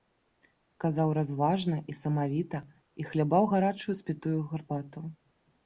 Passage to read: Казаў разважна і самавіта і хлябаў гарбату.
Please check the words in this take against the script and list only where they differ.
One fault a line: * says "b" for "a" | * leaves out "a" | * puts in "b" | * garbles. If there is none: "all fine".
* puts in "гарачую спітую"